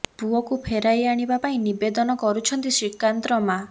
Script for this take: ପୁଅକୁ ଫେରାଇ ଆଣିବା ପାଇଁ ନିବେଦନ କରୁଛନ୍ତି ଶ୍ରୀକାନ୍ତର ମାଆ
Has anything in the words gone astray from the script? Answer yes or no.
no